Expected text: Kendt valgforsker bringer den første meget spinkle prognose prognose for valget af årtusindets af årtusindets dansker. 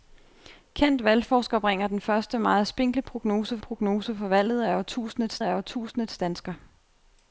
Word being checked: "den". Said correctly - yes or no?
yes